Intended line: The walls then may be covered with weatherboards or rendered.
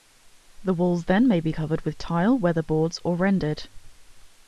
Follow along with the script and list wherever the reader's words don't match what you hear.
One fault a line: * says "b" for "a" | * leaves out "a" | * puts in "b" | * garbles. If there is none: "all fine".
* puts in "tile"